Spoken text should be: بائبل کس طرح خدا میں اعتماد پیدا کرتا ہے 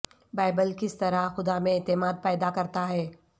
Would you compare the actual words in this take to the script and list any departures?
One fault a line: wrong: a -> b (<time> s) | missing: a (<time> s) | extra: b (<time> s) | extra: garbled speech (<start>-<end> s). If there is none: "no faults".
no faults